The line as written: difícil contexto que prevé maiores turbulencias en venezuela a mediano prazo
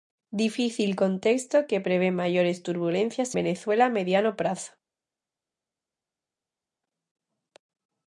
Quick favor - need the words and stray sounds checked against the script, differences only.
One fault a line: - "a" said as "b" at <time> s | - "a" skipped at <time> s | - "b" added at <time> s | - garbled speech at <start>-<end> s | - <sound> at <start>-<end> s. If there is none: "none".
- "en" skipped at 3.4 s